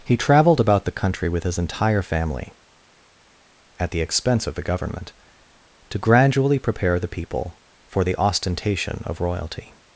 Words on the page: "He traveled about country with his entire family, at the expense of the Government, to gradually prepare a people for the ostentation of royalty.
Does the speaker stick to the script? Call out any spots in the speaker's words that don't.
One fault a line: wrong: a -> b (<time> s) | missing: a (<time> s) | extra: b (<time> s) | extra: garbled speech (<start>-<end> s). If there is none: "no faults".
extra: the (0.8 s)
wrong: a -> the (7.0 s)